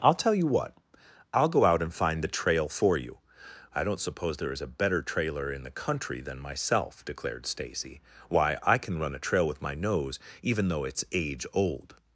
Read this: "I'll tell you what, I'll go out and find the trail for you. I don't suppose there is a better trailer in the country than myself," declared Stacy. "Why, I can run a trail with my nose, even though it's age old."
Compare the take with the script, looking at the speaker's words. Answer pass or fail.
pass